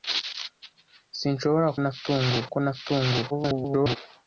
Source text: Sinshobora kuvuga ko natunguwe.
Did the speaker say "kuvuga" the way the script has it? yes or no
no